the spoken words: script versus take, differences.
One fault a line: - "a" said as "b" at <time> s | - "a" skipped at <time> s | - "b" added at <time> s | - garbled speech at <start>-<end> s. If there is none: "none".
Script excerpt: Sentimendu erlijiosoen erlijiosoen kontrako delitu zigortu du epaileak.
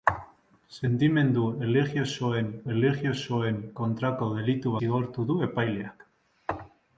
none